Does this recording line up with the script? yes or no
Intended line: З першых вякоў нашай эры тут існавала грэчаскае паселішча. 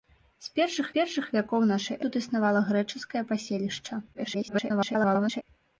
no